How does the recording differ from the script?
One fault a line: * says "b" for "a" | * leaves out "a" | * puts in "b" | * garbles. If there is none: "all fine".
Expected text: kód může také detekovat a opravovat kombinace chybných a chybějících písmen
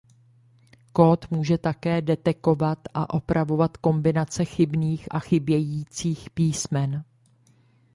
all fine